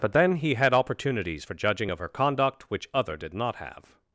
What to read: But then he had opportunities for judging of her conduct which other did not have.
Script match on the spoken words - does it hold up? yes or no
yes